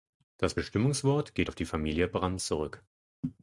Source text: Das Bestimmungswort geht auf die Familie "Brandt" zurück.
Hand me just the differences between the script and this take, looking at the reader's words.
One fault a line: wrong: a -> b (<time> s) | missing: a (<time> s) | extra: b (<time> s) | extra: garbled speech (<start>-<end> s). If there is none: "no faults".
no faults